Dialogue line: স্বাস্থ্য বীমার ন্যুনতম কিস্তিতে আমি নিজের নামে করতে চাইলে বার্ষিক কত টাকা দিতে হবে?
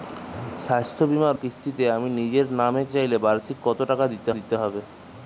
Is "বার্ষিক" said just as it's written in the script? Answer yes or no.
yes